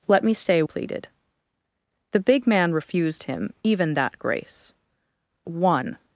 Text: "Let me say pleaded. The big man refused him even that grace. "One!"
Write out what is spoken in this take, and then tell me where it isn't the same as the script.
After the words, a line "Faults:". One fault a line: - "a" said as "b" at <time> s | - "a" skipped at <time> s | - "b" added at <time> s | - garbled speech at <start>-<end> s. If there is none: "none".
"Let me say pleaded. The big man refused him even that grace. "One!"
Faults:
none